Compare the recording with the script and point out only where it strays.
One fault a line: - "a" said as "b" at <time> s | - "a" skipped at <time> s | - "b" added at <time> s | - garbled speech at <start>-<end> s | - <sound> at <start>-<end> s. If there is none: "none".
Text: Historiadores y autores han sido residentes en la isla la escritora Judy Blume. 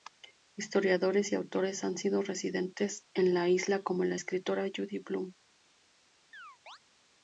- "como" added at 3.8 s
- chirp at 6.3-6.8 s